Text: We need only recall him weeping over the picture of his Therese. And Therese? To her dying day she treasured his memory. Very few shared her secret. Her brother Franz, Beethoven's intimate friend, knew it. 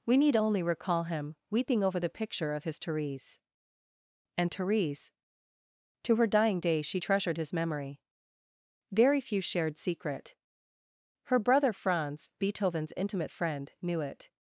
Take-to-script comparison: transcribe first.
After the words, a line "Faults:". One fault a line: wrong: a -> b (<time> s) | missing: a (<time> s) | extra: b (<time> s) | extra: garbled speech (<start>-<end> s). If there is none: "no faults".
We need only recall him weeping over the picture of his Therese. And Therese? To her dying day she treasured his memory. Very few shared secret. Her brother Franz, Beethoven's intimate friend, knew it.
Faults:
missing: her (9.8 s)